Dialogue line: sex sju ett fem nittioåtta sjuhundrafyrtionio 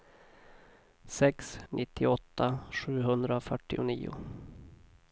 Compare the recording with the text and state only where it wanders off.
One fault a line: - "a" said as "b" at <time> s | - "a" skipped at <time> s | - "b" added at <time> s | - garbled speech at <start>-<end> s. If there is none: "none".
- "sju ett fem" skipped at 1.6 s